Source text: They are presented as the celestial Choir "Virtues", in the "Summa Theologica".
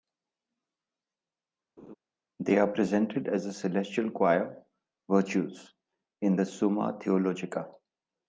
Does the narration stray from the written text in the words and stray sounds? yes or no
yes